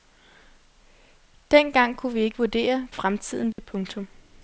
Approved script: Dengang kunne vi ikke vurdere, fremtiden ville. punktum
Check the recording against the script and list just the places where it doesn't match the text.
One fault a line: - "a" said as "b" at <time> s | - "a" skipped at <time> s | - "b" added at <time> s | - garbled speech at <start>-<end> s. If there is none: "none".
none